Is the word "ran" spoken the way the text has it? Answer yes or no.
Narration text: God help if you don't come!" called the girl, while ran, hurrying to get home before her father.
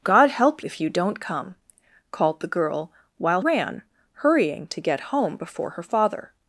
yes